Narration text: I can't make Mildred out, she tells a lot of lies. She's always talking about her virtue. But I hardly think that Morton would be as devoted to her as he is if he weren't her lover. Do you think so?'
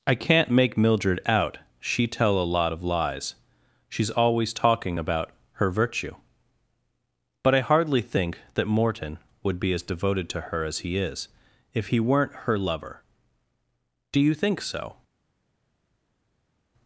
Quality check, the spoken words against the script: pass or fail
fail